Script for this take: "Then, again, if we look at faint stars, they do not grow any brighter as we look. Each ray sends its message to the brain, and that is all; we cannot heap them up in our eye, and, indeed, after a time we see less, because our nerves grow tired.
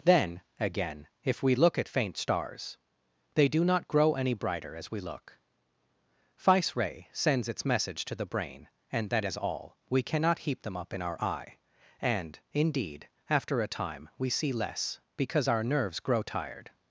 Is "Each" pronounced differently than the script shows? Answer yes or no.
yes